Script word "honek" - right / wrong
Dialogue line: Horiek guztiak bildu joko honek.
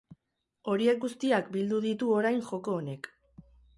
right